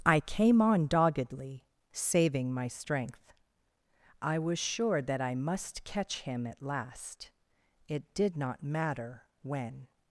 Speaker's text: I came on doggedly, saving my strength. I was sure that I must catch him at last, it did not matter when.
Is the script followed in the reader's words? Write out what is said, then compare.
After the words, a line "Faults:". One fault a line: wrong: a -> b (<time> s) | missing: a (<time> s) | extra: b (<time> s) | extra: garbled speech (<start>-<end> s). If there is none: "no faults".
I came on doggedly, saving my strength. I was sure that I must catch him at last, it did not matter when.
Faults:
no faults